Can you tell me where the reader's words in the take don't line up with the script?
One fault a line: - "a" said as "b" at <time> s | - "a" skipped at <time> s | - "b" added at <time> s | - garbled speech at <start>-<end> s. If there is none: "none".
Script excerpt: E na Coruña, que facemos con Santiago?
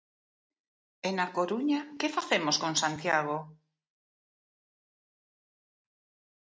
none